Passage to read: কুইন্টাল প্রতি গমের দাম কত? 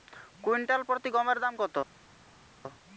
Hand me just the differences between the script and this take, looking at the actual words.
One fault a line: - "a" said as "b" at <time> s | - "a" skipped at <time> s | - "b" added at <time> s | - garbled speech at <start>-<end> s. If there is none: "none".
none